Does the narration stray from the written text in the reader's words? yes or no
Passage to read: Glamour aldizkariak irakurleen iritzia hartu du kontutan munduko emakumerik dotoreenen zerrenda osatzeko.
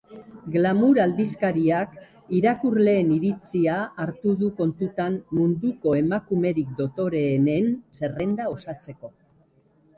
no